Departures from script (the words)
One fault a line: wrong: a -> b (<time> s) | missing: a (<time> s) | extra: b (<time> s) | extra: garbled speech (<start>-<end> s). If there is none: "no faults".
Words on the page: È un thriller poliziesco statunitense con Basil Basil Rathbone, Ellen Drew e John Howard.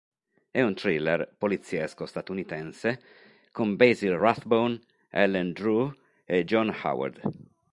missing: Basil (4.2 s)